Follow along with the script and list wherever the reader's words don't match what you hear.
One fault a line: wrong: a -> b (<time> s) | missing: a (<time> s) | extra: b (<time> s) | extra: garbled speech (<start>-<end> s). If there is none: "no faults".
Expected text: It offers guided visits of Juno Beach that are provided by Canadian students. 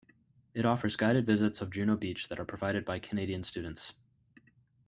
no faults